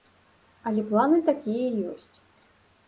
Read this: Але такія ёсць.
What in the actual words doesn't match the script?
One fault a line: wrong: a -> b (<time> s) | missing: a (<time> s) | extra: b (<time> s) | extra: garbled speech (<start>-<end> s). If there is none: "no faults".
extra: планы (0.9 s)